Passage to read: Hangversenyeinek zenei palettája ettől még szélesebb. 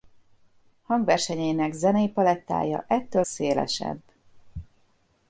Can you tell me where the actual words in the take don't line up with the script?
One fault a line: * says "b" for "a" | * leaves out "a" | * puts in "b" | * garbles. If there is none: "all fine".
* leaves out "még"